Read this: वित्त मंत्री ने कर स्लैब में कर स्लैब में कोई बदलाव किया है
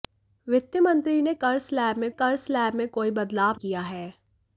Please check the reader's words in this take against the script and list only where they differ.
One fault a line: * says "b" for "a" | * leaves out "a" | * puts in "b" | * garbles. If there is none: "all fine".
all fine